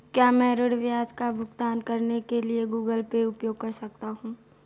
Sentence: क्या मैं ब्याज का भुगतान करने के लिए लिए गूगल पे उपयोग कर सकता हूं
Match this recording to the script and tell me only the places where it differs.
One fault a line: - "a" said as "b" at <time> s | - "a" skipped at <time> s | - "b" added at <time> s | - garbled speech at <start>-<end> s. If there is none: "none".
- "ऋण" added at 0.6 s
- "लिए" skipped at 2.7 s